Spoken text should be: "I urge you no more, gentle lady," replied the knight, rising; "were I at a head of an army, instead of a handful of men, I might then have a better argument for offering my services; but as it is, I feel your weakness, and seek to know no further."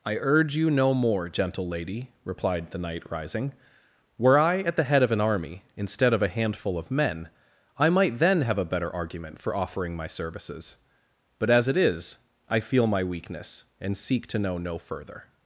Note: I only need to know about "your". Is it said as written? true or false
false